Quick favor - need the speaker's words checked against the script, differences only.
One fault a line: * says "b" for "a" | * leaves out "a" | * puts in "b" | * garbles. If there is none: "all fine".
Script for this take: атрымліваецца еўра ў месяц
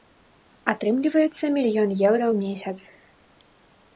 * puts in "мільён"